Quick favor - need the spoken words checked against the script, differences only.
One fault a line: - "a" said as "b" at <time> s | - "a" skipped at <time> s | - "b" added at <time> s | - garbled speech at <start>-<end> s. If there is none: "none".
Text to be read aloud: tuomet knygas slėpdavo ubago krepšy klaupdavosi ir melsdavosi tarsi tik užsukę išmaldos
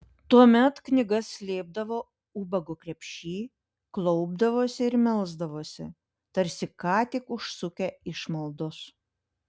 - "ką" added at 6.8 s